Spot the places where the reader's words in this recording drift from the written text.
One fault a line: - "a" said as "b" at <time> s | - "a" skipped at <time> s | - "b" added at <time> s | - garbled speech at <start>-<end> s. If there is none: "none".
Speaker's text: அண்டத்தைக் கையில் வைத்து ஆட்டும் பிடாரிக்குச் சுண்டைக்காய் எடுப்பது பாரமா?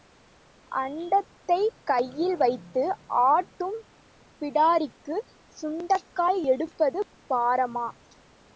none